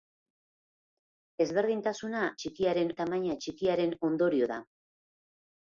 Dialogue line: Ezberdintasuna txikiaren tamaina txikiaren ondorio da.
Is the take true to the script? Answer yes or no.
yes